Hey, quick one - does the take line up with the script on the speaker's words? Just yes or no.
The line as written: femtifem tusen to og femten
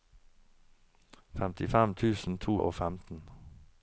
yes